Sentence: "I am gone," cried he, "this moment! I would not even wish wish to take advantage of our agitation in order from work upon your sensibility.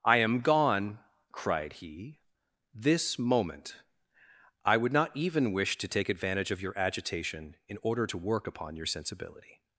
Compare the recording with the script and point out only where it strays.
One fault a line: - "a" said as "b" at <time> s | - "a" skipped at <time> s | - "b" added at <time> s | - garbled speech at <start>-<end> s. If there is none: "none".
- "wish" skipped at 5.8 s
- "our" said as "your" at 6.6 s
- "from" said as "to" at 8.1 s